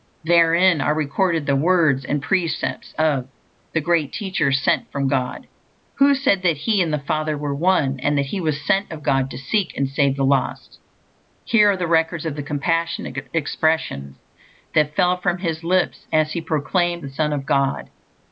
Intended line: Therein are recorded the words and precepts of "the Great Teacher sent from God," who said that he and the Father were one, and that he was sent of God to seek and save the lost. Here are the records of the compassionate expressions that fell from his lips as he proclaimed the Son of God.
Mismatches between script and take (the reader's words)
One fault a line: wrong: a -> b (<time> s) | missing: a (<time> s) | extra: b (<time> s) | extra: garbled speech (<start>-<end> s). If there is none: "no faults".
no faults